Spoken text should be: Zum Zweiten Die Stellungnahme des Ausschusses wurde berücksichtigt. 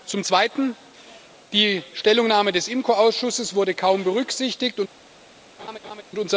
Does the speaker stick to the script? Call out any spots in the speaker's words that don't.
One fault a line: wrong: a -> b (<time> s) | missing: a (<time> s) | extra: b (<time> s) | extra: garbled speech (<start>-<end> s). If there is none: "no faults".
extra: IMCO (2.7 s)
extra: kaum (3.7 s)